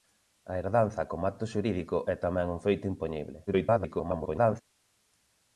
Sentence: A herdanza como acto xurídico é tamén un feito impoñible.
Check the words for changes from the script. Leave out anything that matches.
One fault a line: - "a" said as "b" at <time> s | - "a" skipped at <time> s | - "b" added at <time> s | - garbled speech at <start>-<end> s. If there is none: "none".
- garbled speech at 3.5-4.6 s